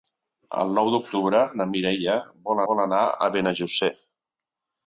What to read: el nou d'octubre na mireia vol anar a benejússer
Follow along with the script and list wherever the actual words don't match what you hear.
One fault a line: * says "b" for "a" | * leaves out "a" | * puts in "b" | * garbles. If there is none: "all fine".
* puts in "vol"